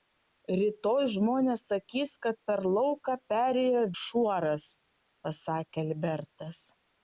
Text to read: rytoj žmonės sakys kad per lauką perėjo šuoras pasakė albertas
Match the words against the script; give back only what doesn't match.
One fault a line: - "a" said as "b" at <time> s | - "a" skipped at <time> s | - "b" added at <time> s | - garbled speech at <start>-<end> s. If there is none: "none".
none